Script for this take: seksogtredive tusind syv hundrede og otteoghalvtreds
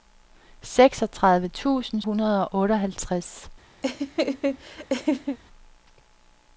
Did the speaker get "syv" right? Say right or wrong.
wrong